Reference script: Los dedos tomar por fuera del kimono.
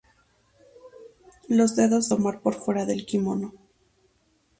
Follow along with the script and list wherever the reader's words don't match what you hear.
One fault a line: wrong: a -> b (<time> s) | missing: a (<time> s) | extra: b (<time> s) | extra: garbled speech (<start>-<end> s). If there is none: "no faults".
no faults